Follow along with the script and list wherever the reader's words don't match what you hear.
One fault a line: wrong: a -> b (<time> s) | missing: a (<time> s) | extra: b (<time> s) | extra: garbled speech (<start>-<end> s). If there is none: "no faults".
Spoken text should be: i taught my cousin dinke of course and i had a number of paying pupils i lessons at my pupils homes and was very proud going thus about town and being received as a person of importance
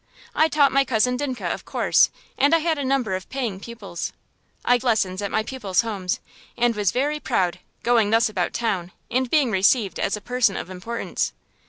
no faults